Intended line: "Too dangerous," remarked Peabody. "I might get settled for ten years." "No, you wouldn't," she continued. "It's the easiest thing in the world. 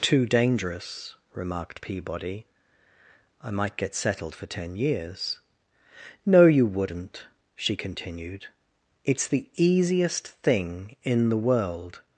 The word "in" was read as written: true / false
true